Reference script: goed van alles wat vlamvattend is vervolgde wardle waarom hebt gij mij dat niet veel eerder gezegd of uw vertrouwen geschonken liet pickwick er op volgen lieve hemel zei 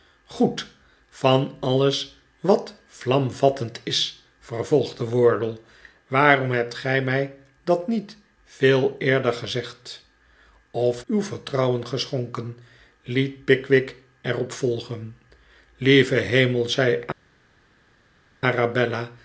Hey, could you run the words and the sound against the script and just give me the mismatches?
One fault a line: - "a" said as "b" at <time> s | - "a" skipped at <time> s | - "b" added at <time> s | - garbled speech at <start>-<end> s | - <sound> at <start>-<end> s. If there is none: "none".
none